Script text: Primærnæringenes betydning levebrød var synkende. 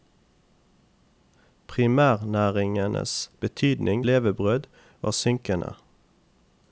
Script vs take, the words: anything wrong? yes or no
no